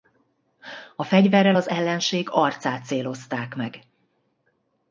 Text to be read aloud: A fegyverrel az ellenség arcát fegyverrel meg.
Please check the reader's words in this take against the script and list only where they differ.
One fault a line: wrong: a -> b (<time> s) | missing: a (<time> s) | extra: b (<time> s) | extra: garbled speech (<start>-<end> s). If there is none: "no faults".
wrong: fegyverrel -> célozták (2.8 s)